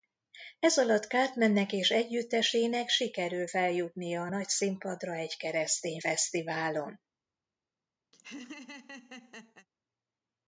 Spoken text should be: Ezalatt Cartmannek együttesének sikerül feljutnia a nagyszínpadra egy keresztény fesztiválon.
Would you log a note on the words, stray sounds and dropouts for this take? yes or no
yes